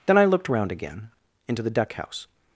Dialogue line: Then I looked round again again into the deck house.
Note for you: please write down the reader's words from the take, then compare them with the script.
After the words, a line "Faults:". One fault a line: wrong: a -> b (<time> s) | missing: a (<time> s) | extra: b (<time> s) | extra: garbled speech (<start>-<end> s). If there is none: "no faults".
Then I looked round again into the deck house.
Faults:
missing: again (1.1 s)